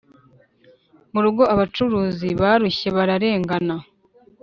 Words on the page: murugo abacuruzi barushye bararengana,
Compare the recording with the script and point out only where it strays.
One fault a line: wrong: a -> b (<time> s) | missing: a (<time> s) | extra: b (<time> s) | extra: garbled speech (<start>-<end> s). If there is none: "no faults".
no faults